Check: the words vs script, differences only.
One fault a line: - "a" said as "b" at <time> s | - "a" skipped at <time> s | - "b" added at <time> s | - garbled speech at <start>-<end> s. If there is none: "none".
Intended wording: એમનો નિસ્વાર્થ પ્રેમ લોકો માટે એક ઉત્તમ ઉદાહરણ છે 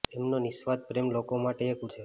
- "ઉત્તમ ઉદાહરણ" skipped at 1.9 s